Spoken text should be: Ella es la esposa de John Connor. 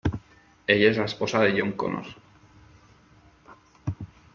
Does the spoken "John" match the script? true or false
true